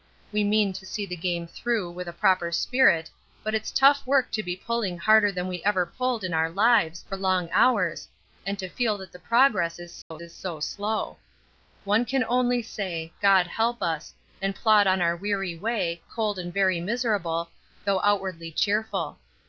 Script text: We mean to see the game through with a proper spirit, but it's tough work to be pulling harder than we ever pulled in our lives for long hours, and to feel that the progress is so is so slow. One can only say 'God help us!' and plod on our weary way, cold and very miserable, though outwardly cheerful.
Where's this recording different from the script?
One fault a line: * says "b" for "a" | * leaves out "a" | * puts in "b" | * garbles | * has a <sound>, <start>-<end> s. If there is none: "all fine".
* has a dropout, 10.0-10.1 s